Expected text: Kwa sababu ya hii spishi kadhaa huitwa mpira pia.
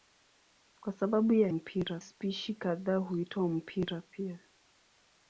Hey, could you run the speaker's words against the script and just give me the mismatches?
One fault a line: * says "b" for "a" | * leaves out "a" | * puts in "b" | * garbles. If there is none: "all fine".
* says "mpira" for "hii"